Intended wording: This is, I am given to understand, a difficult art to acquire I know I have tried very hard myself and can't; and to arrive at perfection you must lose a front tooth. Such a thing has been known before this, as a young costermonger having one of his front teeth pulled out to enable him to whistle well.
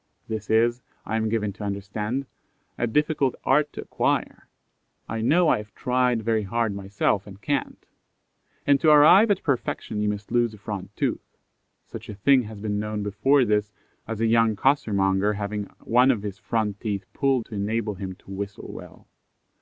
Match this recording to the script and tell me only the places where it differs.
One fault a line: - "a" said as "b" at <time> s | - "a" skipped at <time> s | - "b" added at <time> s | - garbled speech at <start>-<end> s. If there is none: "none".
- "out" skipped at 17.4 s